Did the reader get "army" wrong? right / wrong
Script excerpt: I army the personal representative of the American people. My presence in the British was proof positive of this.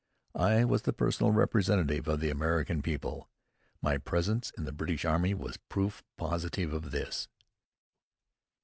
wrong